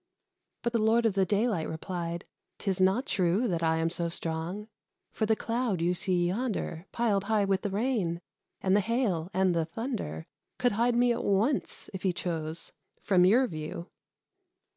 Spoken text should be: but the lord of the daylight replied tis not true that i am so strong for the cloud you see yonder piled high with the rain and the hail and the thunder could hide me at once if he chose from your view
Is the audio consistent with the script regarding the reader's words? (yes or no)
yes